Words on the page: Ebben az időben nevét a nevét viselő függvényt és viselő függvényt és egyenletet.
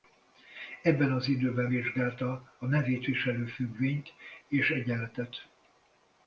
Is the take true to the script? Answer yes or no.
no